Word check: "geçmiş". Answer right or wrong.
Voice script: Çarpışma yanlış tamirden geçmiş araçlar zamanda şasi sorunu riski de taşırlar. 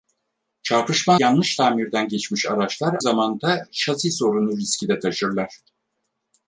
right